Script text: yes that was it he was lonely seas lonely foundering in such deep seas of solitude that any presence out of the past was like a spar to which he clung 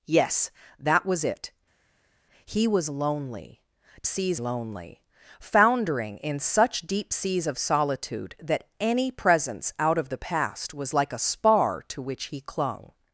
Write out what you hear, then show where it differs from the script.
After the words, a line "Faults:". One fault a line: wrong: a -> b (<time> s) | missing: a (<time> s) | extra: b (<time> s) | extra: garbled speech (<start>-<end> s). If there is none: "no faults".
yes that was it he was lonely seas lonely foundering in such deep seas of solitude that any presence out of the past was like a spar to which he clung
Faults:
no faults